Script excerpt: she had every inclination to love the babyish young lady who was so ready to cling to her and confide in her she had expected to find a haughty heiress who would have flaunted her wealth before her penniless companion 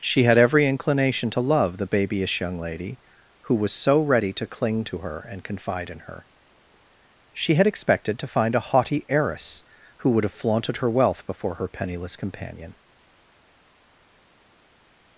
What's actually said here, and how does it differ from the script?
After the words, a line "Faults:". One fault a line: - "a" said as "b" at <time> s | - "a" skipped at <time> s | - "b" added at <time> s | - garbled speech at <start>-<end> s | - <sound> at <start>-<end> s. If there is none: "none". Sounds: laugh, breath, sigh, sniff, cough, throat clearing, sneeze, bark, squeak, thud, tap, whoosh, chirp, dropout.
she had every inclination to love the babyish young lady who was so ready to cling to her and confide in her she had expected to find a haughty heiress who would have flaunted her wealth before her penniless companion
Faults:
none